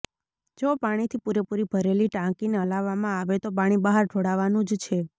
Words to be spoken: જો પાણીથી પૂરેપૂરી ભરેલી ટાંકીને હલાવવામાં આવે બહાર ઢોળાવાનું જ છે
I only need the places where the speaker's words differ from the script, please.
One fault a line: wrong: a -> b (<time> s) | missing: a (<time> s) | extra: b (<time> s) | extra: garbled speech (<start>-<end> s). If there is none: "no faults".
extra: તો પાણી (3.4 s)